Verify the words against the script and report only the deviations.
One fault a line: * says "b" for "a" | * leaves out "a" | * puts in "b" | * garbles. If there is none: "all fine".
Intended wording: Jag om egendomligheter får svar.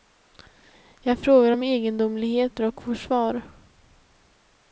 * puts in "frågar"
* puts in "och"